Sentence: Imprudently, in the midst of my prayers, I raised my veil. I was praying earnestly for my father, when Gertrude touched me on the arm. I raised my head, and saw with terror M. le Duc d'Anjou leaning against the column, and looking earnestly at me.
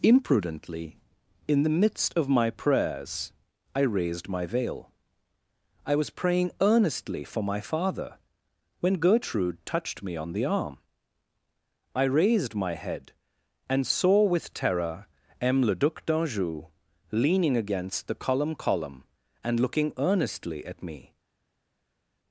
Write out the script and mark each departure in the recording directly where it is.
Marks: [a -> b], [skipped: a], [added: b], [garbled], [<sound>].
Imprudently, in the midst of my prayers, I raised my veil. I was praying earnestly for my father, when Gertrude touched me on the arm. I raised my head, and saw with terror M. le Duc d'Anjou leaning against the column, [added: column] and looking earnestly at me.